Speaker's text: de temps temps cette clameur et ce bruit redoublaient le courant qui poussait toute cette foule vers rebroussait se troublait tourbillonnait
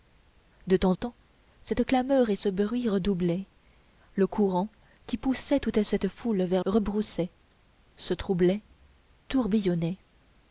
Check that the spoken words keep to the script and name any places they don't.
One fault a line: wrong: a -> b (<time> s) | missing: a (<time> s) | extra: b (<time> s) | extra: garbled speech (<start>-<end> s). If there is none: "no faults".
no faults